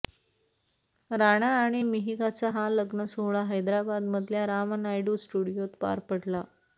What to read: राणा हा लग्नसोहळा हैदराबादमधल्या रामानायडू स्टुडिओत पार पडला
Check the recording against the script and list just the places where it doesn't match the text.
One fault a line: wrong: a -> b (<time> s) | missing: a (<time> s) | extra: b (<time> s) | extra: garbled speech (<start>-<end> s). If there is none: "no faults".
extra: आणि मिहिकाचा (1.6 s)